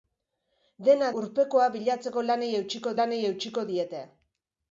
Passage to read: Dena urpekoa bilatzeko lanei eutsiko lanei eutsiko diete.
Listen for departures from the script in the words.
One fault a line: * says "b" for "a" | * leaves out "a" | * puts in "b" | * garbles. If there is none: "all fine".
all fine